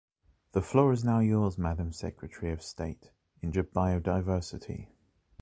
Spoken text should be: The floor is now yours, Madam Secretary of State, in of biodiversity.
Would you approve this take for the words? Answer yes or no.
yes